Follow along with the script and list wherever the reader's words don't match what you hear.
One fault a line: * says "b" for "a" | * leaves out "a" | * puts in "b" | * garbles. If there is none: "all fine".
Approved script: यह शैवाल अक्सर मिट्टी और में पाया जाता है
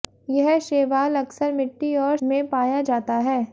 all fine